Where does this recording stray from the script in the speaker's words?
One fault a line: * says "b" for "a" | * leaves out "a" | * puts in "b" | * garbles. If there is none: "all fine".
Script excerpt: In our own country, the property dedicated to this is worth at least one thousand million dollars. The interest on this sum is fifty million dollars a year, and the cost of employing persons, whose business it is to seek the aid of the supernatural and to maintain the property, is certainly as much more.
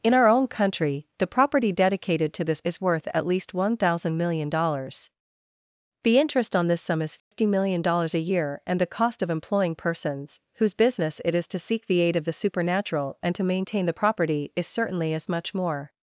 all fine